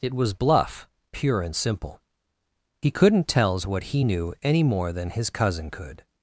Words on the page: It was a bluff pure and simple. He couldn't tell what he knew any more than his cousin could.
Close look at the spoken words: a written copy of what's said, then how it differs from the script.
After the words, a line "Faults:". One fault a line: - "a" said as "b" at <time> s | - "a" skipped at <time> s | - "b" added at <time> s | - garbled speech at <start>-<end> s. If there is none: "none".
It was bluff pure and simple. He couldn't tells what he knew any more than his cousin could.
Faults:
- "a" skipped at 0.3 s
- "tell" said as "tells" at 3.3 s